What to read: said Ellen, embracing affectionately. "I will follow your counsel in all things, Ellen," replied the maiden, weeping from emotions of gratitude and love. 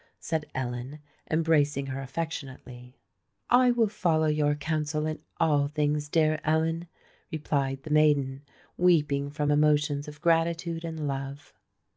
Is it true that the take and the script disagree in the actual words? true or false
true